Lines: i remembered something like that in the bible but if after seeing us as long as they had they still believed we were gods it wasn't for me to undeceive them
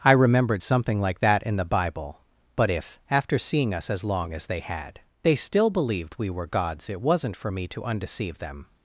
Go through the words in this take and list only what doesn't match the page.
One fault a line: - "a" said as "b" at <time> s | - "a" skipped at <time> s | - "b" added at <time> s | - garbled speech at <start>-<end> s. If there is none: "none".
none